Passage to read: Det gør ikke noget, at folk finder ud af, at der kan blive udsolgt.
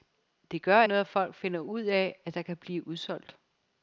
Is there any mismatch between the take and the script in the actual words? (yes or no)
yes